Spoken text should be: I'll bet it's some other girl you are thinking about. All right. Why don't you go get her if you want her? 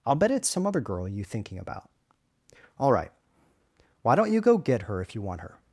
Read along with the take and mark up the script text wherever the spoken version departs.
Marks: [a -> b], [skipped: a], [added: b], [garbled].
I'll bet it's some other girl you [skipped: are] thinking about. All right. Why don't you go get her if you want her?